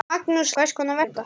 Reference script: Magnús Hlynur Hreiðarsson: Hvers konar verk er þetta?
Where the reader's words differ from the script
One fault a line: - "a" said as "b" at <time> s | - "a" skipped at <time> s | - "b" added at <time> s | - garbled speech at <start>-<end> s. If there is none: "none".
- "Hlynur Hreiðarsson" skipped at 0.5 s
- "verk" skipped at 1.0 s